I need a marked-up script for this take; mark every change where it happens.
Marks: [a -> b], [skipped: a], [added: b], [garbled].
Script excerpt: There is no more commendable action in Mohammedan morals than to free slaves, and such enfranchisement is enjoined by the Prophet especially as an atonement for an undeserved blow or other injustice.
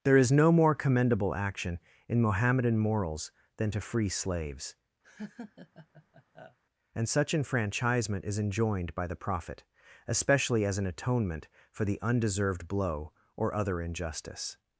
There is no more commendable action in Mohammedan morals than to free slaves, and such enfranchisement is enjoined by the Prophet especially as an atonement for [an -> the] undeserved blow or other injustice.